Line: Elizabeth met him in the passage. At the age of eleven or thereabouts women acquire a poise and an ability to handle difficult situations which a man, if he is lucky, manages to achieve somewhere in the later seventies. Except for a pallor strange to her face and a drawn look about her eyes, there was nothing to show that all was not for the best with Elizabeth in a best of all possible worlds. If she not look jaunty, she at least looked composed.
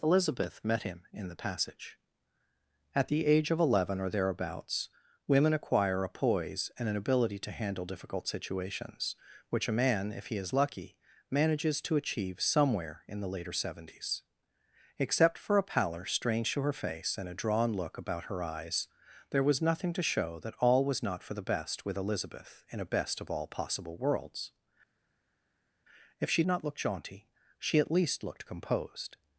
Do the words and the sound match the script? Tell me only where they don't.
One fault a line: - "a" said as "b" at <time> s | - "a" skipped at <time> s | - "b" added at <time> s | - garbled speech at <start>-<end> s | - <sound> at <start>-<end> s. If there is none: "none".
none